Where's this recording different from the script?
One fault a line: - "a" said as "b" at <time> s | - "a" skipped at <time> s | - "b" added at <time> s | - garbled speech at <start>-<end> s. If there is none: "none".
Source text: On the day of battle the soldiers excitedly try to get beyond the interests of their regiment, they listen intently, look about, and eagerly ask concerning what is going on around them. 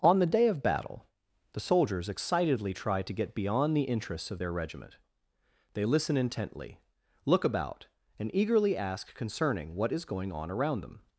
none